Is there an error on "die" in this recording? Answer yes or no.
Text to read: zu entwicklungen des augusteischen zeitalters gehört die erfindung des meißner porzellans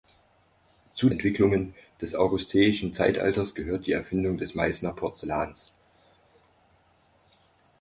no